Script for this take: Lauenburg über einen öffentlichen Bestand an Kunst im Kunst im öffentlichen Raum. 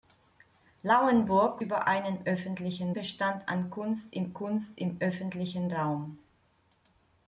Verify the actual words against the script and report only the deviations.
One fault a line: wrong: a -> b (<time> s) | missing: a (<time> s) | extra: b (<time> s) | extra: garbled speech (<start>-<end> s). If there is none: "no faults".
no faults